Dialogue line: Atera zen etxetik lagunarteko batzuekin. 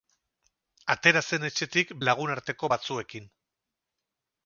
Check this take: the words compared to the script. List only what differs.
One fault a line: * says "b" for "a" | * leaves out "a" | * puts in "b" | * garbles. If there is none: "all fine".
all fine